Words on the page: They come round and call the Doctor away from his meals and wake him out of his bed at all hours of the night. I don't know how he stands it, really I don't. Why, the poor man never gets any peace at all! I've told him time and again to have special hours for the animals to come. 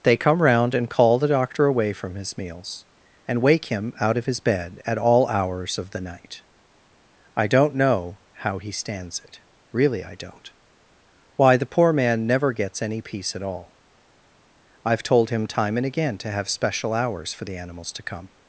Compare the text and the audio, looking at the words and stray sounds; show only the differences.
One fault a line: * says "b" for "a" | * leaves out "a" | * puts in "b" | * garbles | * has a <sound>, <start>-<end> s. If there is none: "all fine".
all fine